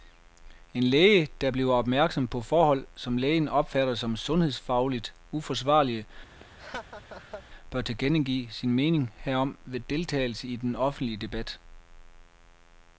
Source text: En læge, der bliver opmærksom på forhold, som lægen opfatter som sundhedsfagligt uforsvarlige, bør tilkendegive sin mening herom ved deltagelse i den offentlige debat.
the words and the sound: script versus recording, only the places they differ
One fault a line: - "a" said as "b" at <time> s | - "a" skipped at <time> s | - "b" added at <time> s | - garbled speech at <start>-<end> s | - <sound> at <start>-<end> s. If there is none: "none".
- laugh at 6.4-7.4 s